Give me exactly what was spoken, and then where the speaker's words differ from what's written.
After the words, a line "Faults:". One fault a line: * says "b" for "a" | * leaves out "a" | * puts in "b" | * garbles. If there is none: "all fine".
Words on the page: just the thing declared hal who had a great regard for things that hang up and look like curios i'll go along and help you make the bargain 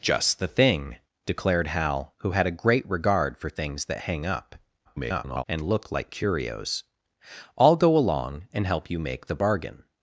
just the thing declared hal who had a great regard for things that hang up [garbled] and look like curios i'll go along and help you make the bargain
Faults:
* garbles